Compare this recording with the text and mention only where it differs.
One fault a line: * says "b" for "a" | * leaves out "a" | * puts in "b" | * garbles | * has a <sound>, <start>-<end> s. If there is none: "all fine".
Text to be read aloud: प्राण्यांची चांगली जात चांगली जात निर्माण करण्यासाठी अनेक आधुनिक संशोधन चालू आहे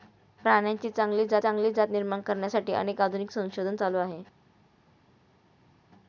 all fine